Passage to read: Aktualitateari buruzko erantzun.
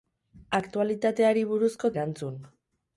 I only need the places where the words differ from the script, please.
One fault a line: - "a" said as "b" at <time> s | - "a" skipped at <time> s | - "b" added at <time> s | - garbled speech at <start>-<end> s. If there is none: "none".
none